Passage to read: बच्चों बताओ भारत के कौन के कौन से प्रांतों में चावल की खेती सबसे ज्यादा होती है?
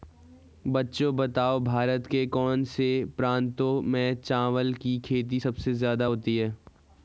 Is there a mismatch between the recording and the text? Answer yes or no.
yes